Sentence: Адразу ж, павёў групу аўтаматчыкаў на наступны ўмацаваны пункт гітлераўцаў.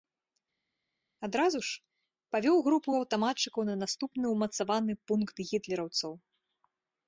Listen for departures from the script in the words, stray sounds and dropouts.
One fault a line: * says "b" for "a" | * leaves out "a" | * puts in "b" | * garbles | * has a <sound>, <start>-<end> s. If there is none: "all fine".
all fine